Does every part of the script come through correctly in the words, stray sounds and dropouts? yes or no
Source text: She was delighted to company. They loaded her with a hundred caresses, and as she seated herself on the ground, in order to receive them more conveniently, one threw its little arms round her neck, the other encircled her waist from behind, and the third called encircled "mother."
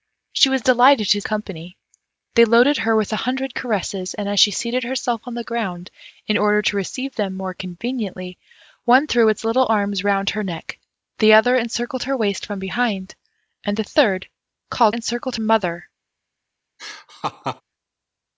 no